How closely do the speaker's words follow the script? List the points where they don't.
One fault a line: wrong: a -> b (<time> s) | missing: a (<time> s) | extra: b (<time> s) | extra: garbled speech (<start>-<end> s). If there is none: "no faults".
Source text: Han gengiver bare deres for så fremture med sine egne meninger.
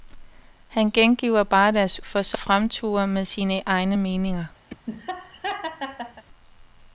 no faults